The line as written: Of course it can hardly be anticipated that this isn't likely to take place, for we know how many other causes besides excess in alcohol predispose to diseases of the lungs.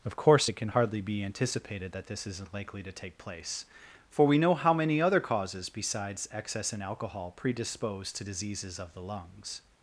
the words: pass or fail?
pass